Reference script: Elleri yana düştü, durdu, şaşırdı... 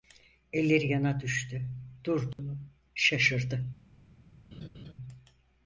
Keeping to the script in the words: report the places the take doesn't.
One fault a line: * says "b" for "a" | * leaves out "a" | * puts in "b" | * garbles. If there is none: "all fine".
all fine